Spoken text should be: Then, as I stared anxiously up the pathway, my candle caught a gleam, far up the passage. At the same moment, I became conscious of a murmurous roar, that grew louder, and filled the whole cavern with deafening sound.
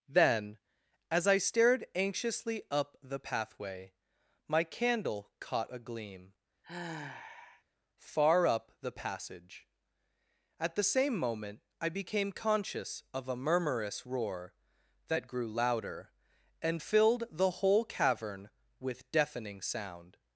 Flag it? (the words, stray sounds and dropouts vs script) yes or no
yes